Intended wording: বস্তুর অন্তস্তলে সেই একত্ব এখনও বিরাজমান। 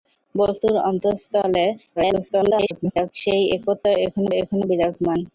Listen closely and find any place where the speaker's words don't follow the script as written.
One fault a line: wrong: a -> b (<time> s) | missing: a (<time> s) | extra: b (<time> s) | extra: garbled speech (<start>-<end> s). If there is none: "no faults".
extra: garbled speech (2.0-3.1 s)
extra: এখনও (4.4 s)